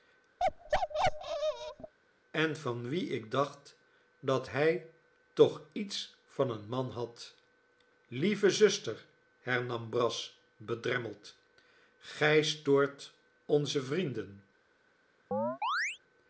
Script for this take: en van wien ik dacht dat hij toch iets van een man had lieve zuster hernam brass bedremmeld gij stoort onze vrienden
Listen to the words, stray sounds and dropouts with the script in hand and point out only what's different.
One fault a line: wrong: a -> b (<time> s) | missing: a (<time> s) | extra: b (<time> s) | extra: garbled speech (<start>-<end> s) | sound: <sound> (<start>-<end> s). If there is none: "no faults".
sound: bark (0.4-1.9 s)
sound: chirp (15.3-16.0 s)